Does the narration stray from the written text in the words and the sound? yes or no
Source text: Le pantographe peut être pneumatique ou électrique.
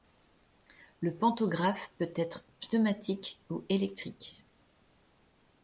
no